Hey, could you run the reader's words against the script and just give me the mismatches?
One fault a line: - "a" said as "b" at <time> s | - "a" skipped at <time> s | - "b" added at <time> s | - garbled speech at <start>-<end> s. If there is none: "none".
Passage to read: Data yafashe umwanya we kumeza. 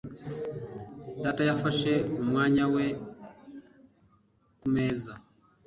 none